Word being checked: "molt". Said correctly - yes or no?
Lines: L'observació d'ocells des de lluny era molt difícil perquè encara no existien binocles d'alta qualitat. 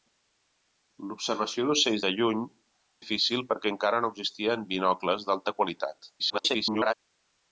no